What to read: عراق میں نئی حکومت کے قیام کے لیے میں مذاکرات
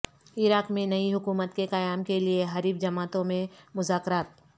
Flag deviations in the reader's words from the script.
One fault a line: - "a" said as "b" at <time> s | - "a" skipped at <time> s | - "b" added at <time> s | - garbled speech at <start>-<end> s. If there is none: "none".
- "حریف جماعتوں" added at 2.5 s